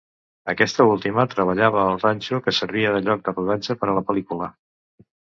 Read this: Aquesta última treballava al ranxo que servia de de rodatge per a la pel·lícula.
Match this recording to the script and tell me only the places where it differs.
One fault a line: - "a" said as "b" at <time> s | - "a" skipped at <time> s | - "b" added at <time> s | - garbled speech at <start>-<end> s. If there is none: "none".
- "lloc" added at 3.1 s